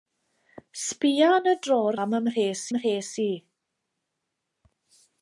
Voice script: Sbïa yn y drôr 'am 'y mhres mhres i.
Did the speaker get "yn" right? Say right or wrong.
right